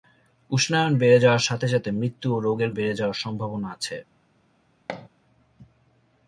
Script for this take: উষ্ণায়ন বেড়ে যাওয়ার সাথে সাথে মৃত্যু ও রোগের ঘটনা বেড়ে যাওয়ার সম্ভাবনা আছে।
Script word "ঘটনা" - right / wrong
wrong